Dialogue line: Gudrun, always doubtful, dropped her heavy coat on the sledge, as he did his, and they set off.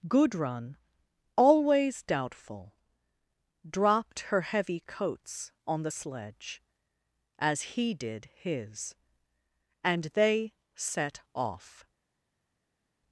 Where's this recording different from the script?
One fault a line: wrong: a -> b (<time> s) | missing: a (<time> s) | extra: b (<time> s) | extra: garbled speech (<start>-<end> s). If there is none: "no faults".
wrong: coat -> coats (4.8 s)